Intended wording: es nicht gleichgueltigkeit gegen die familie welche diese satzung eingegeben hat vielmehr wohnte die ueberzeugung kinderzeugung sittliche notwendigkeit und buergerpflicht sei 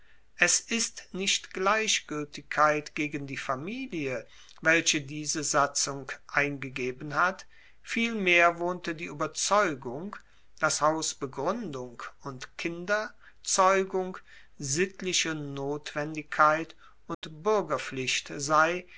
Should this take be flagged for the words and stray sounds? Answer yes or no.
yes